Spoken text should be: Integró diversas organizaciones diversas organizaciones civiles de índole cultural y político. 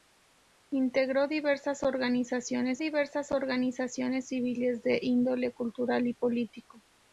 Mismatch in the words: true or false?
false